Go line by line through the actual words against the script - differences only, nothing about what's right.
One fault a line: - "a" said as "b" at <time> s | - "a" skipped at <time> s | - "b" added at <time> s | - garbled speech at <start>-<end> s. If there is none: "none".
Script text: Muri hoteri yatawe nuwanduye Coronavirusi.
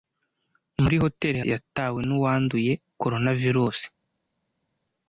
none